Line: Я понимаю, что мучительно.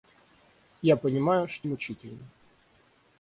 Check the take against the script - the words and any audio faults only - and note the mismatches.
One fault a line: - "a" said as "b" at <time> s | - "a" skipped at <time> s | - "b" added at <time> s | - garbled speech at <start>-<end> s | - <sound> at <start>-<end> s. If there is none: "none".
none